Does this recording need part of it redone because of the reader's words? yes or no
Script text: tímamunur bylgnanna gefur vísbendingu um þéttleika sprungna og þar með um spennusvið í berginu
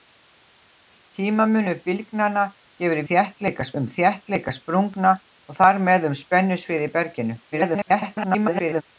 yes